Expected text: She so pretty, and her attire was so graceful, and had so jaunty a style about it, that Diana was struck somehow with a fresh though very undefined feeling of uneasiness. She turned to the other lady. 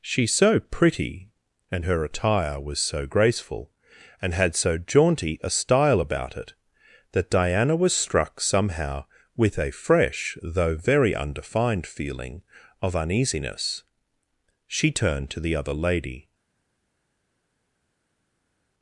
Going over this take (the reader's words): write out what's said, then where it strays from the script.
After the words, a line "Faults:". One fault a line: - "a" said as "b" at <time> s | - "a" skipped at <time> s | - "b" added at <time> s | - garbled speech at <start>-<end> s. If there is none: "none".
She so pretty, and her attire was so graceful, and had so jaunty a style about it, that Diana was struck somehow with a fresh though very undefined feeling of uneasiness. She turned to the other lady.
Faults:
none